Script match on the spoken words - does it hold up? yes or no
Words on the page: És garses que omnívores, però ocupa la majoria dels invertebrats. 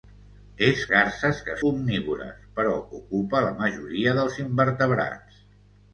yes